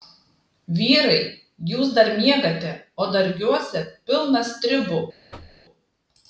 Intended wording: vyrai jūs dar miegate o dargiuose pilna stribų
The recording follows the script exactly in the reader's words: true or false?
true